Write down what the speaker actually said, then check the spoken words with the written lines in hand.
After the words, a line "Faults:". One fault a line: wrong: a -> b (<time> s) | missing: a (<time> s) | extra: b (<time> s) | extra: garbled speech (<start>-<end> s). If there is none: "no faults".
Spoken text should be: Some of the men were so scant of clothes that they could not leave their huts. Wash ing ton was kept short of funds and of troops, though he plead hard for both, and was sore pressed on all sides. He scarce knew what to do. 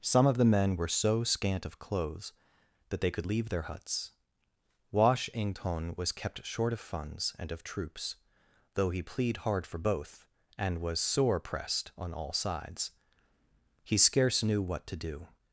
Some of the men were so scant of clothes that they could leave their huts. Wash ing ton was kept short of funds and of troops, though he plead hard for both, and was sore pressed on all sides. He scarce knew what to do.
Faults:
missing: not (3.3 s)